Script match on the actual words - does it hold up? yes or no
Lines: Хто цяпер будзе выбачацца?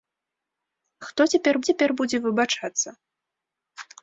no